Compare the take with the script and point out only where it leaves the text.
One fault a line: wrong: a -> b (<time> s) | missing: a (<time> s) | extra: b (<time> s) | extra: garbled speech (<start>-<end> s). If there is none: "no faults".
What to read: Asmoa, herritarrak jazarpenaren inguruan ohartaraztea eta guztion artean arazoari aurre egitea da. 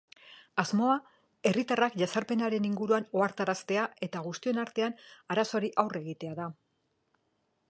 no faults